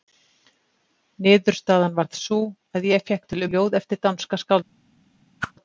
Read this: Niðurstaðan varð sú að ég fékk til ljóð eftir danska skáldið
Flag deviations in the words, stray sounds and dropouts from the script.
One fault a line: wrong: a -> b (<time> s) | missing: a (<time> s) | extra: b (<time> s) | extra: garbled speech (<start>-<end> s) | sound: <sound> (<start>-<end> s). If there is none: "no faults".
sound: whoosh (5.4-5.5 s)